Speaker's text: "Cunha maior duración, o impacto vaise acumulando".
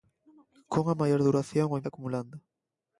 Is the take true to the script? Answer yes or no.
no